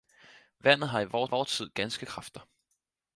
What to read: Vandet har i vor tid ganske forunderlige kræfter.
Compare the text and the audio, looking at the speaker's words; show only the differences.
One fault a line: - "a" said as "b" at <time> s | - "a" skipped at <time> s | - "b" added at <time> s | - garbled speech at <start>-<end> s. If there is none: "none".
- "vor" added at 1.2 s
- "forunderlige" skipped at 2.1 s